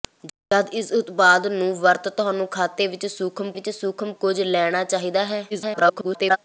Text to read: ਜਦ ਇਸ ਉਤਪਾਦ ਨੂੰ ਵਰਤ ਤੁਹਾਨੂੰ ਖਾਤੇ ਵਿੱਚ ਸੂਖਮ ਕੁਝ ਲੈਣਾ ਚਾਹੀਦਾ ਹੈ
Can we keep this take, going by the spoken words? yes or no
no